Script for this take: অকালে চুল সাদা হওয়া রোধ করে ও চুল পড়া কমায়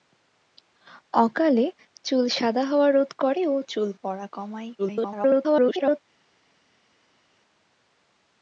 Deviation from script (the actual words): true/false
true